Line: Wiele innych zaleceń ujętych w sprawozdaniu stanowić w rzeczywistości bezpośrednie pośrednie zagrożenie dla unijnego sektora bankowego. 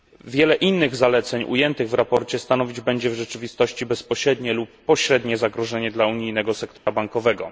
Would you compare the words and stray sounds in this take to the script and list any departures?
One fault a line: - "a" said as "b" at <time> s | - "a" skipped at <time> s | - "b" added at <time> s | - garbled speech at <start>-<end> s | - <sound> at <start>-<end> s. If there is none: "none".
- "będzie" added at 2.8 s
- "lub" added at 4.5 s
- dropout at 6.8-6.9 s